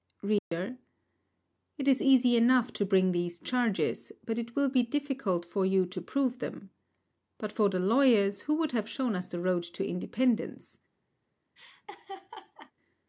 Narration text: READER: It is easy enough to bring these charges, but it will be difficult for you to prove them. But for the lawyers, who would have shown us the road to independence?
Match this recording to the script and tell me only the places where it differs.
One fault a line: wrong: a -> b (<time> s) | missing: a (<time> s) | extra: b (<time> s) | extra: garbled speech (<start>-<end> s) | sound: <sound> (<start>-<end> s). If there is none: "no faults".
sound: dropout (0.4-0.5 s)
sound: laugh (11.6-12.7 s)